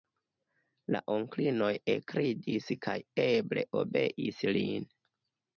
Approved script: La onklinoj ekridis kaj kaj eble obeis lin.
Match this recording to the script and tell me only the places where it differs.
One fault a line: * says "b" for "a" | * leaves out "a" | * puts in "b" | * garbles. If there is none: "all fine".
* leaves out "kaj"